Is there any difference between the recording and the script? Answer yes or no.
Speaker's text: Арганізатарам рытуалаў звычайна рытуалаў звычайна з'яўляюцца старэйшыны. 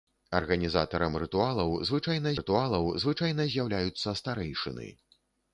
no